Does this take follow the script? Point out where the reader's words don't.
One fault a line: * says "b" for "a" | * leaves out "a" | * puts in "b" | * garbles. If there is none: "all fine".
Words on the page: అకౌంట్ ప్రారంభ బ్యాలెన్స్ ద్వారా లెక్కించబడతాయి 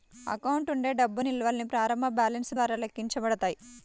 * puts in "ఉండే డబ్బు నిల్వల్ని"